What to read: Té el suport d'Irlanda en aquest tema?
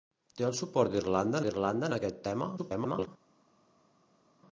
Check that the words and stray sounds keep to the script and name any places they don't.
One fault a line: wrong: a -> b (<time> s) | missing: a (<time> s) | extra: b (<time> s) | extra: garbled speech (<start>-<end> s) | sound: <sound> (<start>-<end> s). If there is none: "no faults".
extra: d'Irlanda (1.5 s)
extra: garbled speech (2.6-3.1 s)